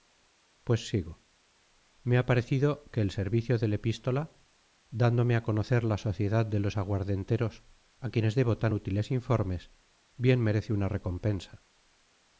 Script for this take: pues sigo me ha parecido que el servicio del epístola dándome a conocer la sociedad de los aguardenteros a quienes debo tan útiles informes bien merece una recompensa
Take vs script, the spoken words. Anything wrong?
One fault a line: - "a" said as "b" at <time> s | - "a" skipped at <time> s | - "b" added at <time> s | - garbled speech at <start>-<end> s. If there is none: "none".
none